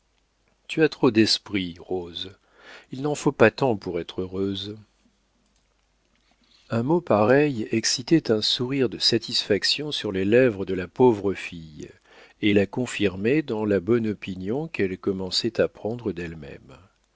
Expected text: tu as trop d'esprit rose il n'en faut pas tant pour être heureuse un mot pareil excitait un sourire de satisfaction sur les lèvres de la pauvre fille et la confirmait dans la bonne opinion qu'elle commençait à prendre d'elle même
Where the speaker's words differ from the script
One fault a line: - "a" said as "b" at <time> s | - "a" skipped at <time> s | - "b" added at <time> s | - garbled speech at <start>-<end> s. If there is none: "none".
none